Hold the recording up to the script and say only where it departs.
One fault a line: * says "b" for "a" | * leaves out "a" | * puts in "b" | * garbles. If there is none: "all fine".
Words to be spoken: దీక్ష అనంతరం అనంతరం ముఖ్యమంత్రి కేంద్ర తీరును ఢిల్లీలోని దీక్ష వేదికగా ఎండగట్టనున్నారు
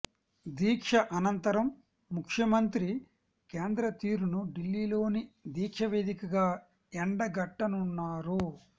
* leaves out "అనంతరం"